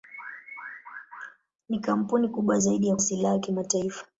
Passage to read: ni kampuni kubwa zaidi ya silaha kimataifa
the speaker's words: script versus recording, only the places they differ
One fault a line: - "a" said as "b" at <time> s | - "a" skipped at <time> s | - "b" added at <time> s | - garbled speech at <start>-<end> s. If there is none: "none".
none